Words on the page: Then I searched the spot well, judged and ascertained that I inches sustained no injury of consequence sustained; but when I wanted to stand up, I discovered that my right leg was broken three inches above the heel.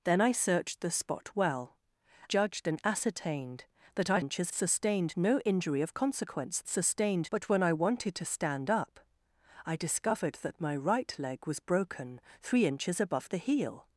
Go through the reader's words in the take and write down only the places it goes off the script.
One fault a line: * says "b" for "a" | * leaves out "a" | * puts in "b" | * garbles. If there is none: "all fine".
all fine